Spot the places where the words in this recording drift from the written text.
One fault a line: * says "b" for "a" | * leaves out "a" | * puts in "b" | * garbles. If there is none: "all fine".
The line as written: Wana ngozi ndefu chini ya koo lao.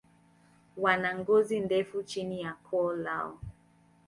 all fine